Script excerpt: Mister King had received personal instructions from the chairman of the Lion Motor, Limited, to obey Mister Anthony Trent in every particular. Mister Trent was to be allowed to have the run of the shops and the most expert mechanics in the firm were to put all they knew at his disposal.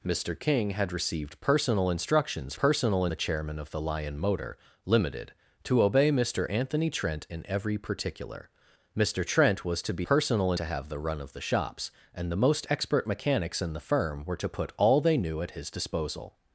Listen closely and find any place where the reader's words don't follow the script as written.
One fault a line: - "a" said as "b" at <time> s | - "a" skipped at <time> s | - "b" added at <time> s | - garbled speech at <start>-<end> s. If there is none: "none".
- "from" said as "personal" at 2.6 s
- "allowed" said as "personal" at 10.0 s